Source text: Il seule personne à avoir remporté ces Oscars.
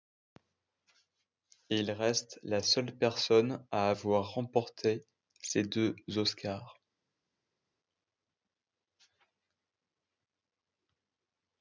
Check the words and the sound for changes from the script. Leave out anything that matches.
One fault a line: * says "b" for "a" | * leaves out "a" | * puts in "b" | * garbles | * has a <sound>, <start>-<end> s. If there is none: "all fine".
* puts in "reste la"
* puts in "deux"